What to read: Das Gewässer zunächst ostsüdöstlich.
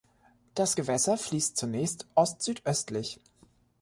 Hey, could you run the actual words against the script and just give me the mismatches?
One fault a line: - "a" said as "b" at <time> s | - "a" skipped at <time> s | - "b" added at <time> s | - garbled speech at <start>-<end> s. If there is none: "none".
- "fließt" added at 1.2 s